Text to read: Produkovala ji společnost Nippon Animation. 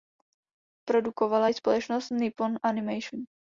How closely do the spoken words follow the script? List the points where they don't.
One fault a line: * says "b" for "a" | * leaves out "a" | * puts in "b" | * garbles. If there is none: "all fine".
all fine